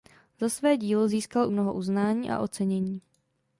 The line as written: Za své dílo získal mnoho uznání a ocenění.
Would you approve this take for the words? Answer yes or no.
yes